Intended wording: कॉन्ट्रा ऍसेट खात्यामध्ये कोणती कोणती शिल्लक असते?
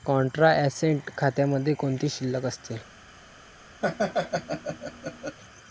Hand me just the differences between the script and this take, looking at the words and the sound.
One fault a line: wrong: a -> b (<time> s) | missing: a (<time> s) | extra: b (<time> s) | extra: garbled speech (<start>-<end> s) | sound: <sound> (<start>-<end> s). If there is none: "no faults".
missing: कोणती (2.1 s)
sound: laugh (3.8-5.4 s)